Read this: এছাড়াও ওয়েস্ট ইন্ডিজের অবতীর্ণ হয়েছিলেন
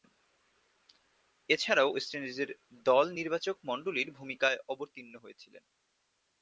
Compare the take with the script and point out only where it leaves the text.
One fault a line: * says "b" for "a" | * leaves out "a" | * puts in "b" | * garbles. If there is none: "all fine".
* puts in "দল নির্বাচকমণ্ডলীর ভূমিকায়"